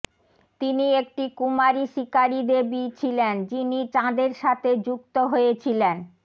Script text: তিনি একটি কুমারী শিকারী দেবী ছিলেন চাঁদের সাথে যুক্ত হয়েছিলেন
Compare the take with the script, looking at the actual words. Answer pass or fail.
fail